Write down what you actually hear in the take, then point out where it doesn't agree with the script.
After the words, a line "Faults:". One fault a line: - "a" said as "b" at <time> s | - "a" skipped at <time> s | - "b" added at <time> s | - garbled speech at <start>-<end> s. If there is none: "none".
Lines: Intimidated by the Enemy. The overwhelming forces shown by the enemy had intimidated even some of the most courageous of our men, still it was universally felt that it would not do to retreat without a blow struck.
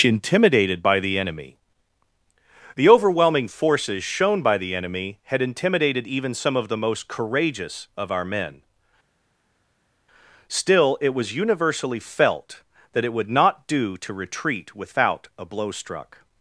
Intimidated by the Enemy. The overwhelming forces shown by the enemy had intimidated even some of the most courageous of our men, still it was universally felt that it would not do to retreat without a blow struck.
Faults:
none